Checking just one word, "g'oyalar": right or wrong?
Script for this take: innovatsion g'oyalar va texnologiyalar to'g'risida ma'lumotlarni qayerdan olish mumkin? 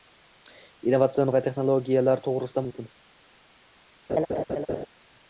wrong